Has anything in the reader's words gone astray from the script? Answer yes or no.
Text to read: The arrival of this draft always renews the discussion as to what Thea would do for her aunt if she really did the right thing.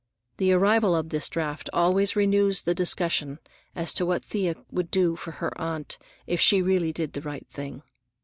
no